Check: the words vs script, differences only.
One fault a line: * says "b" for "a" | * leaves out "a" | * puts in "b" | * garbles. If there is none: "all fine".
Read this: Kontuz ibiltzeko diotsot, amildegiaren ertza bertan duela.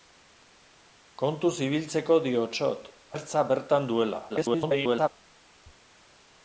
* leaves out "amildegiaren"
* garbles